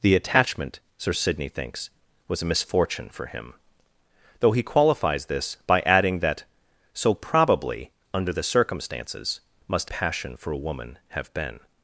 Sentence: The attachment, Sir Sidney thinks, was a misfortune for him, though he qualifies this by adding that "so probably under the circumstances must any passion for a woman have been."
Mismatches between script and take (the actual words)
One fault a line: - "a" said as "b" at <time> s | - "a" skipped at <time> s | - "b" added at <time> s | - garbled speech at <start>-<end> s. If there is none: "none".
- "any" skipped at 9.9 s